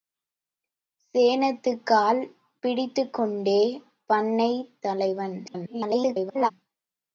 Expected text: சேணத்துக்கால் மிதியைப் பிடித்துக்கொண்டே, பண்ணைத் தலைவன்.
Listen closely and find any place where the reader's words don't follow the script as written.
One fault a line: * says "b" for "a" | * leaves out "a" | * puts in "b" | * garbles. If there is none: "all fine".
* leaves out "மிதியைப்"
* garbles